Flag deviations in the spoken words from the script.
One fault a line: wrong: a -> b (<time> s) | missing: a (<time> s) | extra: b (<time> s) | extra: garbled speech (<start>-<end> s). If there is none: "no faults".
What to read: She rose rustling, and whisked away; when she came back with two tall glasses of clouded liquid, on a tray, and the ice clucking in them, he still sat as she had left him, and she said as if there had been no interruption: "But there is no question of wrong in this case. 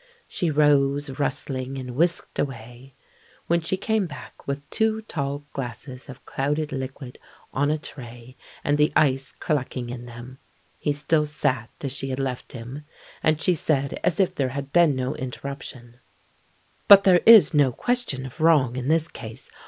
no faults